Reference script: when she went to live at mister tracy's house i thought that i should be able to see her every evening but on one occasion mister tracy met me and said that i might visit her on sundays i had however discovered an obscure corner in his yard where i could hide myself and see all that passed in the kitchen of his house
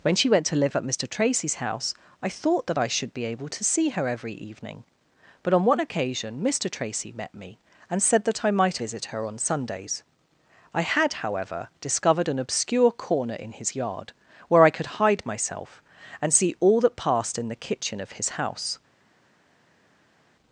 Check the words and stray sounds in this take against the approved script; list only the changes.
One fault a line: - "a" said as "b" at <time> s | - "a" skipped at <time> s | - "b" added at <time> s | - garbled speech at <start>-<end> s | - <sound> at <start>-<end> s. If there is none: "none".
none